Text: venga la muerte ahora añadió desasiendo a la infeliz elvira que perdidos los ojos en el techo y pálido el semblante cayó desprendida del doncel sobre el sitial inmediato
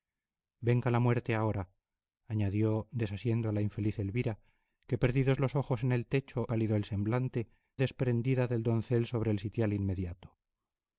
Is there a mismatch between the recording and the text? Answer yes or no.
yes